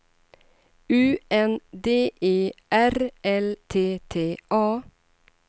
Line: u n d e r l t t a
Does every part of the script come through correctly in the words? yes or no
yes